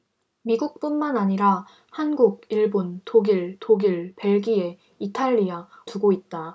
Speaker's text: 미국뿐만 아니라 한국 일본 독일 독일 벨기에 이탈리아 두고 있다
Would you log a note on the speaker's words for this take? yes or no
no